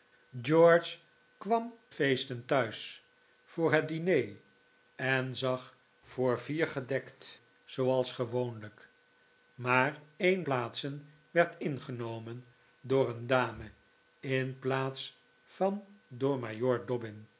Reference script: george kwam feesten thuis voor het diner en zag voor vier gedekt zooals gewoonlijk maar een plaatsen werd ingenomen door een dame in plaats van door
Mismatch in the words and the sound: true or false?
false